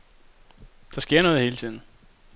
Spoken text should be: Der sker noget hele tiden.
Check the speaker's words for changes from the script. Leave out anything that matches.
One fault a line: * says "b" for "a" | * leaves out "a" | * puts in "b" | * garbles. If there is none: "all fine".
all fine